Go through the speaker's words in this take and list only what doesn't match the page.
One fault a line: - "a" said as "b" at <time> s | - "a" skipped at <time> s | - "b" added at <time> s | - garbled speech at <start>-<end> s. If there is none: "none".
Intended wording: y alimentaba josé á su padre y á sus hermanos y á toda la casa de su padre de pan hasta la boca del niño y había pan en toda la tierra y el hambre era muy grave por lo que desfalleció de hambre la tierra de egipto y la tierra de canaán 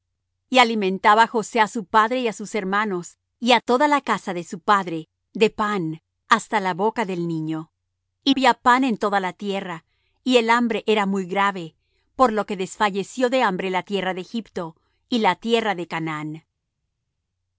none